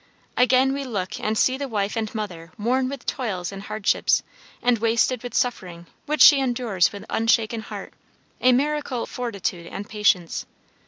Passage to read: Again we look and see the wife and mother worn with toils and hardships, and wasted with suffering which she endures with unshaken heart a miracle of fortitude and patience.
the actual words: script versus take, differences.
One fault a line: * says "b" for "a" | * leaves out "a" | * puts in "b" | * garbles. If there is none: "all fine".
* leaves out "of"